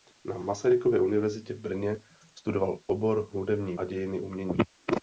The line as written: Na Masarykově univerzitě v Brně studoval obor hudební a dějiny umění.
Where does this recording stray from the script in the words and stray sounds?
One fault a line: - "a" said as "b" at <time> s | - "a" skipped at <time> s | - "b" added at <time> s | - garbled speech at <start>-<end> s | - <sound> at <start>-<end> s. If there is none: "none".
none